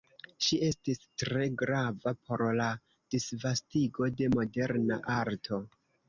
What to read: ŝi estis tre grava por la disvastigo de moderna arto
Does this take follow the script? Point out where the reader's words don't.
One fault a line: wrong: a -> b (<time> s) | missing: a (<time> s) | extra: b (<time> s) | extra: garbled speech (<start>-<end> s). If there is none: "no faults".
no faults